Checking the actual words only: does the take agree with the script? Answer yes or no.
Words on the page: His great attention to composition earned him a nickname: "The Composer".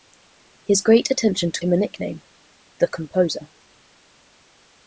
no